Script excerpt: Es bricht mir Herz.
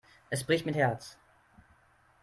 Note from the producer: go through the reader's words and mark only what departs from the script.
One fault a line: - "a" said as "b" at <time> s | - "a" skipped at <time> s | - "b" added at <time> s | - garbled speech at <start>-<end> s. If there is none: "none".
none